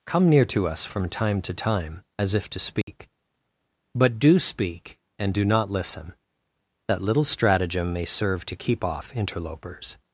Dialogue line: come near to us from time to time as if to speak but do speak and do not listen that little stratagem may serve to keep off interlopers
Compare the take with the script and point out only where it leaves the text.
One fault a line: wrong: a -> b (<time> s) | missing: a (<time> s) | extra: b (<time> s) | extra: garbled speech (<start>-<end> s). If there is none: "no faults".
no faults